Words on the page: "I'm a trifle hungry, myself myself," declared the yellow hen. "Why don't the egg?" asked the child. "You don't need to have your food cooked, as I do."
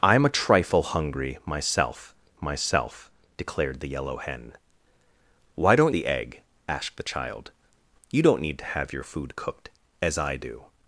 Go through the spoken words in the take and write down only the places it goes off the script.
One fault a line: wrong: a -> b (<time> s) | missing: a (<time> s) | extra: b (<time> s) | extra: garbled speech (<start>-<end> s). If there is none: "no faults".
no faults